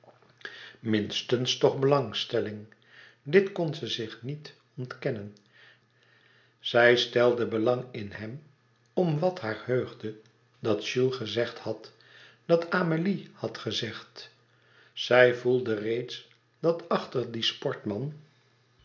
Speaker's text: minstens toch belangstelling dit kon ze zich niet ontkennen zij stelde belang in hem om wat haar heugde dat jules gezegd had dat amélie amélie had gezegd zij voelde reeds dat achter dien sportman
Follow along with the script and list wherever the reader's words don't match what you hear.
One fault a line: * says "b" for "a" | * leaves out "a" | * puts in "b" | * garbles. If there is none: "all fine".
* leaves out "amélie"